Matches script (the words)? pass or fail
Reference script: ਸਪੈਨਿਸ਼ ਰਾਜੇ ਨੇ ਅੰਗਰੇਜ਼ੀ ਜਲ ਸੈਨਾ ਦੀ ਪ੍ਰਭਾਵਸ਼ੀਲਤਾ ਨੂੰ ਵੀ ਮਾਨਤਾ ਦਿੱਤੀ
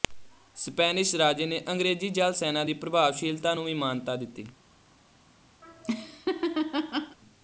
pass